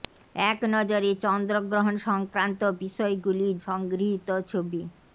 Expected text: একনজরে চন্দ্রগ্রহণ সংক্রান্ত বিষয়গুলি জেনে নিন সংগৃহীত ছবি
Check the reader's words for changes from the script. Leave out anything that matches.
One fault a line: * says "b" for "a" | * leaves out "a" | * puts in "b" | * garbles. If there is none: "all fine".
* leaves out "জেনে নিন"